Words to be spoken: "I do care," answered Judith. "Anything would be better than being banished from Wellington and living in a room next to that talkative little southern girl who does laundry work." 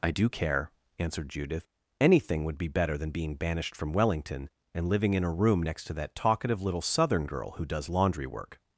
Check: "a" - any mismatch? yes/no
no